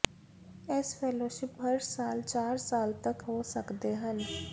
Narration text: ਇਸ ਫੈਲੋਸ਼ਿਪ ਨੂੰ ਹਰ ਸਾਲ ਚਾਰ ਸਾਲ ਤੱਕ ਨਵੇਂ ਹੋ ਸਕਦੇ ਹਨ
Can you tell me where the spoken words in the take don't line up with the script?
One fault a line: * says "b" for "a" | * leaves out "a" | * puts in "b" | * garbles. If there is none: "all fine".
* leaves out "ਨੂੰ"
* leaves out "ਨਵੇਂ"